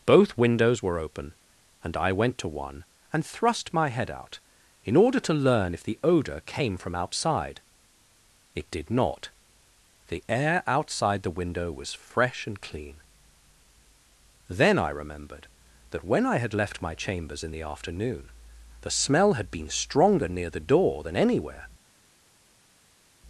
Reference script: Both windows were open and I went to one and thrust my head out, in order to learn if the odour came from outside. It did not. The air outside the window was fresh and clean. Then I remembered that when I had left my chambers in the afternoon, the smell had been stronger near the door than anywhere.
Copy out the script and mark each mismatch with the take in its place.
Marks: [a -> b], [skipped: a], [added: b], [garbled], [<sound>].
Both windows were open and I went to one and thrust my head out, in order to learn if the odour came from outside. It did not. The air outside the window was fresh and clean. Then I remembered that when I had left my chambers in the afternoon, the smell had been stronger near the door than anywhere.